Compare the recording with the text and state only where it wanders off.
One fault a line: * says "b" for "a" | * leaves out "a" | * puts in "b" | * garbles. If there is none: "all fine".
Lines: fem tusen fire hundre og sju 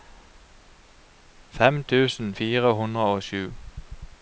all fine